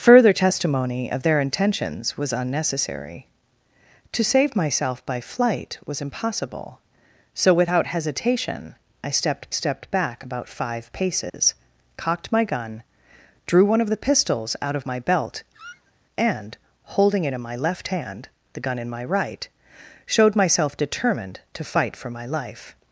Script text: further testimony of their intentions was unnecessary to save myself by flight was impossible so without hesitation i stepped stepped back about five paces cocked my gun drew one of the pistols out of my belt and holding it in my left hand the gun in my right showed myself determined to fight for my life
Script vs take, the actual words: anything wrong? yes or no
no